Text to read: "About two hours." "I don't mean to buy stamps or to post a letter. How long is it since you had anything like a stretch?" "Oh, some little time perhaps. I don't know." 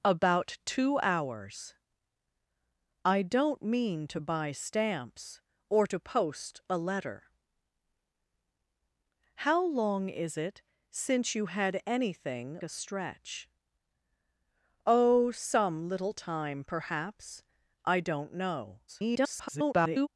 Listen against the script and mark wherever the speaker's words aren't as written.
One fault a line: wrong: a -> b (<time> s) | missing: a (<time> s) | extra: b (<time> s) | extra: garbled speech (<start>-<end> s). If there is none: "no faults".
missing: like (12.6 s)
extra: garbled speech (18.9-20.1 s)